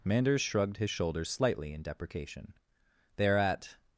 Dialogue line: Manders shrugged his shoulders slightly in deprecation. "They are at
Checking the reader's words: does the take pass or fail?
pass